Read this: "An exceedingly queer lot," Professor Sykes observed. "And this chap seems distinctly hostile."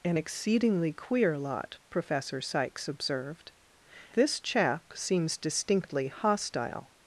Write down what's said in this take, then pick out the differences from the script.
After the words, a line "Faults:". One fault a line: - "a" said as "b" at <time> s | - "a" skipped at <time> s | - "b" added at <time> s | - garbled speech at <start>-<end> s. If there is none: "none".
"An exceedingly queer lot," Professor Sykes observed. "This chap seems distinctly hostile."
Faults:
- "And" skipped at 3.5 s